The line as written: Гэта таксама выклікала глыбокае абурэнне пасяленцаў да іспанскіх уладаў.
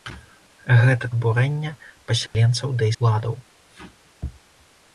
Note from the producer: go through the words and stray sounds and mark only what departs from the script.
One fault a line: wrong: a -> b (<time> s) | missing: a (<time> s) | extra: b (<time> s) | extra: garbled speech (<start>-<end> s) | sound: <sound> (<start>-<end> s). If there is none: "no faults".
missing: таксама выклікала глыбокае (1.1 s)
sound: dropout (2.3-2.3 s)
missing: іспанскіх (2.9 s)